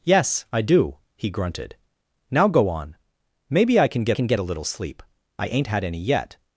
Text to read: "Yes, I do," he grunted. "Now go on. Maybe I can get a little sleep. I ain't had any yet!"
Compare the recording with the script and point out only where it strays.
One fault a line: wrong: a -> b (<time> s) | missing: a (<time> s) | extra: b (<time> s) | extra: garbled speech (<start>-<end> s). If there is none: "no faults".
extra: can get (4.1 s)